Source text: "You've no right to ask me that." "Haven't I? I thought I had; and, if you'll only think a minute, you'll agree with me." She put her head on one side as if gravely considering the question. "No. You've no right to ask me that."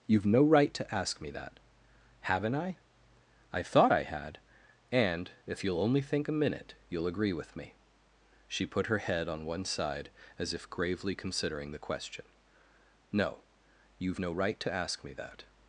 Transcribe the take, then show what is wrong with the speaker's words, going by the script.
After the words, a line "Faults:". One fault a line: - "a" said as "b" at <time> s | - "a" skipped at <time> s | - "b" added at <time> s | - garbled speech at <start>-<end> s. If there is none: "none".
"You've no right to ask me that." "Haven't I? I thought I had; and, if you'll only think a minute, you'll agree with me." She put her head on one side as if gravely considering the question. "No. You've no right to ask me that."
Faults:
none